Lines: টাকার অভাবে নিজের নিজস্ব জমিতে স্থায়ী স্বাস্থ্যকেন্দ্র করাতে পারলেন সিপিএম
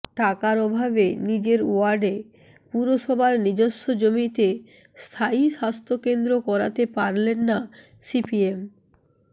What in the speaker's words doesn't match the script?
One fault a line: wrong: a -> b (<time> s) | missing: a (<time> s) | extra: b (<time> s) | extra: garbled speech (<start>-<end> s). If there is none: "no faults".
extra: ওয়ার্ডে পুরসভার (1.7 s)
extra: না (7.5 s)